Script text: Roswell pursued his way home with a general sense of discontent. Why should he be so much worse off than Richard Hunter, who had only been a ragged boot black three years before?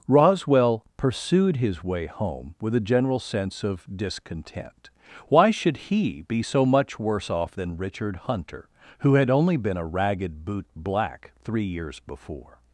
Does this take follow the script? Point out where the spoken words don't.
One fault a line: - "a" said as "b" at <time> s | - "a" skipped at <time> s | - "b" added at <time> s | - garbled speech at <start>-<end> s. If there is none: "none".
none